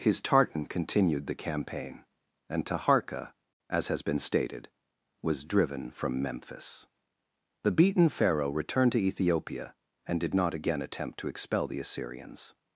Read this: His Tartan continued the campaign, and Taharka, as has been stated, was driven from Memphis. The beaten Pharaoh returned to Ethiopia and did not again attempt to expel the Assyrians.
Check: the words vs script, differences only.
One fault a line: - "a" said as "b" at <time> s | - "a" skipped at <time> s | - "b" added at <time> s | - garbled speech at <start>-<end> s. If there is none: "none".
none